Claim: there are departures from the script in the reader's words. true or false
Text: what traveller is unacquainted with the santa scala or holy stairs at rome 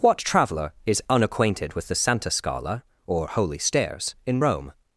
true